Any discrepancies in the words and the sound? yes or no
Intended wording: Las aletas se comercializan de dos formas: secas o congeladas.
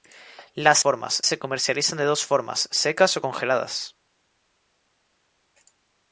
yes